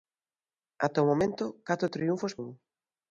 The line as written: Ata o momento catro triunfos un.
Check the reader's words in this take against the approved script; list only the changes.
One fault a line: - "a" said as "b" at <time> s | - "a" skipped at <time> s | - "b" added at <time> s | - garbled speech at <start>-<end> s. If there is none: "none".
none